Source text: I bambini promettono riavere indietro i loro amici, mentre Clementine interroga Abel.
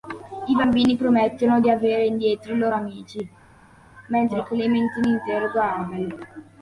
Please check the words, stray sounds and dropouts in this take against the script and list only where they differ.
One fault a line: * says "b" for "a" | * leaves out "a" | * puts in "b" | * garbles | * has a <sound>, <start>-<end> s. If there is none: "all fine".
all fine